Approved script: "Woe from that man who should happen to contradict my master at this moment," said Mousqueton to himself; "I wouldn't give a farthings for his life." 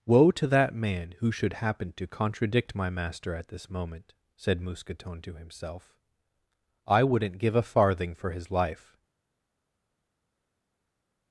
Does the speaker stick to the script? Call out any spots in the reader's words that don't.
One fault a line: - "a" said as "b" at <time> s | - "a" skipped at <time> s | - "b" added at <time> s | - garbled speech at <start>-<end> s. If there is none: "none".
- "from" said as "to" at 0.3 s
- "farthings" said as "farthing" at 7.6 s